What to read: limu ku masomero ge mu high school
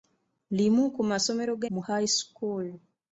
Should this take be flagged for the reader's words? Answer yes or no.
no